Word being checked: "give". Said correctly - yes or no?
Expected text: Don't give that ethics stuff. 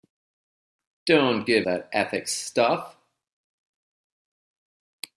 yes